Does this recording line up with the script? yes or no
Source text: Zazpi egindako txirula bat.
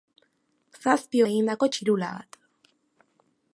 yes